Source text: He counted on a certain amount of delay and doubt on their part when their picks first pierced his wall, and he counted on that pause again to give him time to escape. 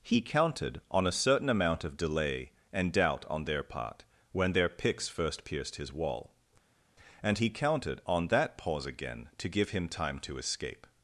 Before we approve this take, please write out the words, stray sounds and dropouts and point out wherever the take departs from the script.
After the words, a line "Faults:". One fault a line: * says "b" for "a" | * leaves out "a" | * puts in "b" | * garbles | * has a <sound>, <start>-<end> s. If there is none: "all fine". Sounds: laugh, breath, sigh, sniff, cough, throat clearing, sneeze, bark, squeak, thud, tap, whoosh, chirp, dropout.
He counted on a certain amount of delay and doubt on their part when their picks first pierced his wall, and he counted on that pause again to give him time to escape.
Faults:
all fine